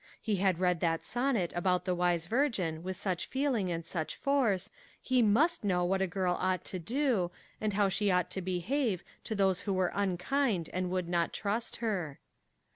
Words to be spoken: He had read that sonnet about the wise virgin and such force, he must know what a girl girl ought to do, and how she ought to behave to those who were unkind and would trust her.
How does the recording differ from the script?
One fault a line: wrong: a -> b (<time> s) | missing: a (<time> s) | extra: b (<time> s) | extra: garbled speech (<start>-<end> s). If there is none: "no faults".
extra: with such feeling (2.8 s)
missing: girl (6.3 s)
extra: not (11.1 s)